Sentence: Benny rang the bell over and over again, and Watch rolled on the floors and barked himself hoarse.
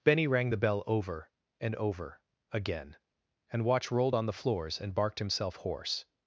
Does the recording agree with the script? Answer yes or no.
yes